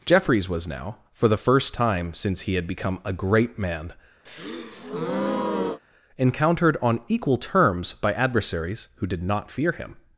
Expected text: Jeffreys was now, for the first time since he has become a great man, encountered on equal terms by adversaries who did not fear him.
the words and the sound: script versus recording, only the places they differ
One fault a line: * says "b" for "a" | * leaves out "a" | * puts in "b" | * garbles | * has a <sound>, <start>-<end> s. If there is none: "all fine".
* says "had" for "has"
* has a breath, 4.3-5.8 s